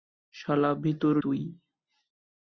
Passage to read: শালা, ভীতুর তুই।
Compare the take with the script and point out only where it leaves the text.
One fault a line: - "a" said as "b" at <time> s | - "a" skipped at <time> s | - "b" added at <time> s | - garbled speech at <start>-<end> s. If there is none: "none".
none